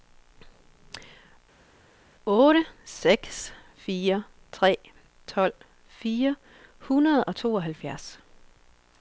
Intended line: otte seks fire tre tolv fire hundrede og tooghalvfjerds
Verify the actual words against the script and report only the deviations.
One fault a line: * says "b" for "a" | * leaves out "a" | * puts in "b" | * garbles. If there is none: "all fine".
all fine